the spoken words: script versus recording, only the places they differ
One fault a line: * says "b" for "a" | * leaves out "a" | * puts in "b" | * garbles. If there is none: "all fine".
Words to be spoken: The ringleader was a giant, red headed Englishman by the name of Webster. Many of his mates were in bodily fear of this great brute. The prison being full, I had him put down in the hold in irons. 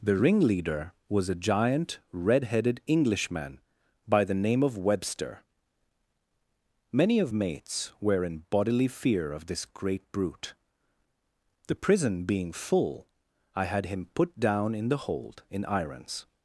* leaves out "his"